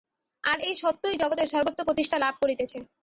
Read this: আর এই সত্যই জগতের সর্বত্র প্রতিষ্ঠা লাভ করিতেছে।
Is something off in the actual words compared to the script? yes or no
no